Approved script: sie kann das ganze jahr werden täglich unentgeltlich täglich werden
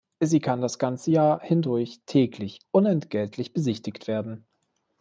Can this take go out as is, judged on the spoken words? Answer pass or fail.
fail